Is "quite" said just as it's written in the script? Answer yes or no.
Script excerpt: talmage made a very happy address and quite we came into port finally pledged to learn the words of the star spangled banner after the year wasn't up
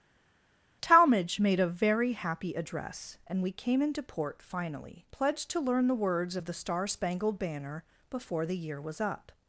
no